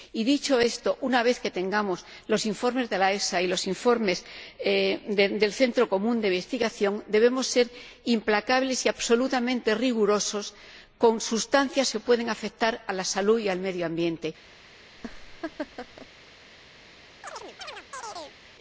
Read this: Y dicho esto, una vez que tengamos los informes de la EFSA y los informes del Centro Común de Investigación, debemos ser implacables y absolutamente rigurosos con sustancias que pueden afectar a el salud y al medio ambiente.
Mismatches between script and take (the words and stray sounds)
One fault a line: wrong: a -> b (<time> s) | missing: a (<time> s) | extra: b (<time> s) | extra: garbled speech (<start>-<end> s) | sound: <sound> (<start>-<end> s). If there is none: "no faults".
wrong: el -> la (12.9 s)
sound: laugh (15.0-16.1 s)
sound: chirp (17.2-18.4 s)